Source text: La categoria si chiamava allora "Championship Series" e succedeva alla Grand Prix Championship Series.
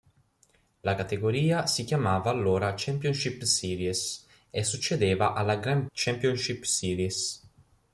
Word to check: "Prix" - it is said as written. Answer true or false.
false